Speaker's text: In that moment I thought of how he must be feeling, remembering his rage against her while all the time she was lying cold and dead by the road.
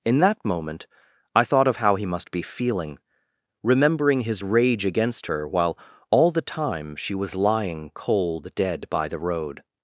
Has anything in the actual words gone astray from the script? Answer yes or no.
yes